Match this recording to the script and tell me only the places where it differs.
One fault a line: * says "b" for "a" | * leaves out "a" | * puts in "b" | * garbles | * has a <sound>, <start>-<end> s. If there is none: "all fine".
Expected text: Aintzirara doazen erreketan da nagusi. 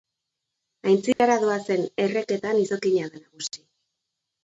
* has a dropout, 1.1-1.2 s
* puts in "izokina"